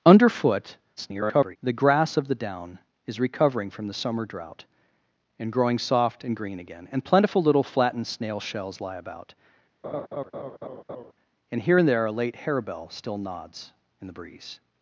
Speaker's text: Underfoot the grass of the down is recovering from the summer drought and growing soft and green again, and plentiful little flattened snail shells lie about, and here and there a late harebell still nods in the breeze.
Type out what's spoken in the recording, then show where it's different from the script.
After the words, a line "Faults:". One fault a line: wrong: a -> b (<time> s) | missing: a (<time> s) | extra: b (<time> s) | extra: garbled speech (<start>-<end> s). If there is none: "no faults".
Underfoot [garbled] the grass of the down is recovering from the summer drought and growing soft and green again, and plentiful little flattened snail shells lie about, and here and there a late harebell still nods in the breeze.
Faults:
extra: garbled speech (1.0-1.6 s)